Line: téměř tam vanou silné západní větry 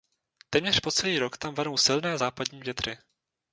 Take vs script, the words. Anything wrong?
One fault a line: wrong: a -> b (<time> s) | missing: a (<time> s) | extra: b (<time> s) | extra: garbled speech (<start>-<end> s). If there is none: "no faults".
extra: po celý rok (0.8 s)